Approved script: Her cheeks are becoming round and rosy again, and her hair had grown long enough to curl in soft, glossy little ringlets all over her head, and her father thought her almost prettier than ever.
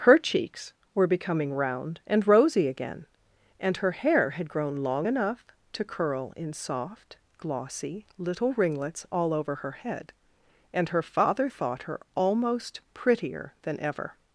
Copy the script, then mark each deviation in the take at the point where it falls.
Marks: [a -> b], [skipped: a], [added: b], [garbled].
Her cheeks [are -> were] becoming round and rosy again, and her hair had grown long enough to curl in soft, glossy little ringlets all over her head, and her father thought her almost prettier than ever.